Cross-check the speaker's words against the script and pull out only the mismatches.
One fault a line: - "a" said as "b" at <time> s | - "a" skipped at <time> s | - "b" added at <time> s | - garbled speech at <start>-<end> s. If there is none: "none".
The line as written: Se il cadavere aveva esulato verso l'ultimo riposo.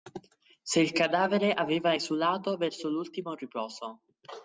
none